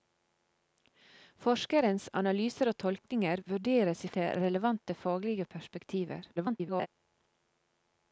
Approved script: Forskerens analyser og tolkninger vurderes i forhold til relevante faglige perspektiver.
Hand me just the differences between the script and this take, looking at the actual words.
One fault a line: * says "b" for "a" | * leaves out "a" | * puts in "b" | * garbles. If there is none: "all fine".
* leaves out "forhold"
* garbles